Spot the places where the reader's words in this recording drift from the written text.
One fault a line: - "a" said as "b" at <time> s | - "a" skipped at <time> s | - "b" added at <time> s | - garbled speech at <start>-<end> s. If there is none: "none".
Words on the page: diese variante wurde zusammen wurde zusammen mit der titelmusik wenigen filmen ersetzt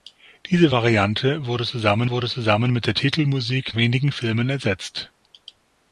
none